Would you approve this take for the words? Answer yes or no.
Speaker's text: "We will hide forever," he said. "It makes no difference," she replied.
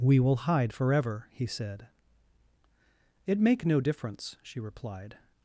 no